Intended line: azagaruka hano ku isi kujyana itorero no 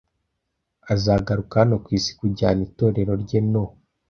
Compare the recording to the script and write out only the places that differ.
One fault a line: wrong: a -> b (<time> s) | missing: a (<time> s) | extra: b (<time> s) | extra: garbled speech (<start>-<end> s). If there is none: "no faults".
extra: rye (3.2 s)